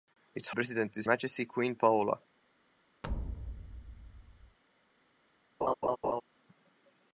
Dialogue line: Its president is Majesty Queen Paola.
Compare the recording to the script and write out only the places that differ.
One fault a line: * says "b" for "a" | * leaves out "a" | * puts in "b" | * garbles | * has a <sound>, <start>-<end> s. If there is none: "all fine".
* has a thud, 3.0-4.6 s
* has a laugh, 5.6-6.2 s